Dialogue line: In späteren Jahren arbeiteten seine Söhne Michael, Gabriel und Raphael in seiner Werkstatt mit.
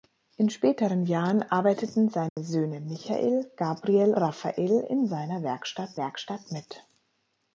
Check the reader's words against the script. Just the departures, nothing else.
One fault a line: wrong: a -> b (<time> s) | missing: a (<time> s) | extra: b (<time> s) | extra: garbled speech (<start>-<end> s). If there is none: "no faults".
missing: und (4.2 s)
extra: Werkstatt (6.0 s)